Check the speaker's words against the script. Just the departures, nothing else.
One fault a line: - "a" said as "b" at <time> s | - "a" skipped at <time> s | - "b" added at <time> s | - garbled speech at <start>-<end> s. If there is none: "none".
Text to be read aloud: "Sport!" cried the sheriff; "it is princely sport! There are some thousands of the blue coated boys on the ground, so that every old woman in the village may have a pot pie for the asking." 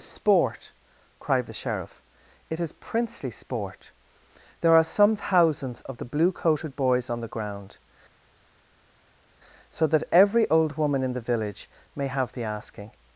- "a pot pie for" skipped at 12.3 s